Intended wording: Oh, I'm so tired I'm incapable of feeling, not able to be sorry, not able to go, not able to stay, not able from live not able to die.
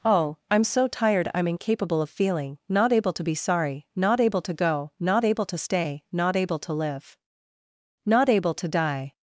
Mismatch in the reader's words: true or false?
true